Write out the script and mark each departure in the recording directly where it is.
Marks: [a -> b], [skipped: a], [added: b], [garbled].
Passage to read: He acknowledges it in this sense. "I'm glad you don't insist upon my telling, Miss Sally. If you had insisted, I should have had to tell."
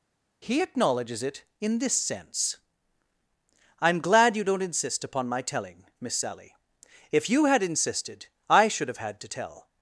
He acknowledges it in this sense. "I'm glad you don't insist upon my telling, Miss Sally. If you had insisted, I should have had to tell."